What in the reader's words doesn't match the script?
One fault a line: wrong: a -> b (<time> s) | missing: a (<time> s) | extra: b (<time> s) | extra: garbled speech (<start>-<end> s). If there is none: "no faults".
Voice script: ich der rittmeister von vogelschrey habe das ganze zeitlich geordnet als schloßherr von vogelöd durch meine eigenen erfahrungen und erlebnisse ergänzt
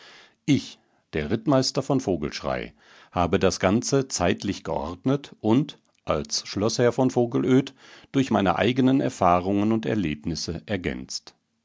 extra: und (5.4 s)